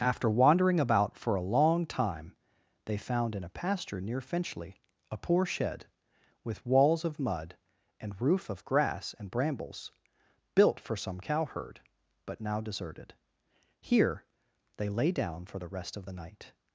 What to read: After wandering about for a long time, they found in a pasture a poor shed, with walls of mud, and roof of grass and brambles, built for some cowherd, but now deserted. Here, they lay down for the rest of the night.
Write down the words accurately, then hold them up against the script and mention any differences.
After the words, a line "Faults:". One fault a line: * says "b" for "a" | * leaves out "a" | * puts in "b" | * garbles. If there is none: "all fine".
After wandering about for a long time, they found in a pasture near Finchley a poor shed, with walls of mud, and roof of grass and brambles, built for some cowherd, but now deserted. Here, they lay down for the rest of the night.
Faults:
* puts in "near Finchley"